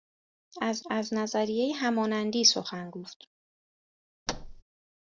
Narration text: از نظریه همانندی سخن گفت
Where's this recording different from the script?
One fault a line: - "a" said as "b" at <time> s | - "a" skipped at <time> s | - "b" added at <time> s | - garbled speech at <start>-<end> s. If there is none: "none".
- "از" added at 0.9 s